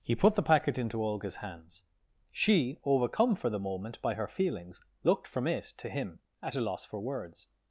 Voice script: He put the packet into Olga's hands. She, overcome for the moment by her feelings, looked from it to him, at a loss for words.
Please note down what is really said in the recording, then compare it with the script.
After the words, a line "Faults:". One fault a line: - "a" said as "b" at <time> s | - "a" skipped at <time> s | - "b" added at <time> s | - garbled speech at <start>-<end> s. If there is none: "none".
He put the packet into Olga's hands. She, overcome for the moment by her feelings, looked from it to him, at a loss for words.
Faults:
none